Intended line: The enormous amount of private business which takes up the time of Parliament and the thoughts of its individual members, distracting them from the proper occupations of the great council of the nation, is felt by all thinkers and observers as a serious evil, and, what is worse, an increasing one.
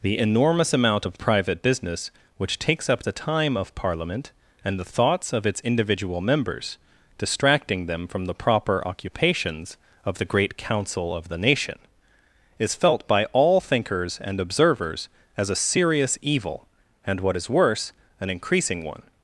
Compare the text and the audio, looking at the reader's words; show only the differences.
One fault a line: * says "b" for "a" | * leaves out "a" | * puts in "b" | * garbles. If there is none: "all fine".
all fine